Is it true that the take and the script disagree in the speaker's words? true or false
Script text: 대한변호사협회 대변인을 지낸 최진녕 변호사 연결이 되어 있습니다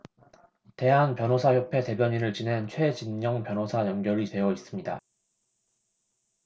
false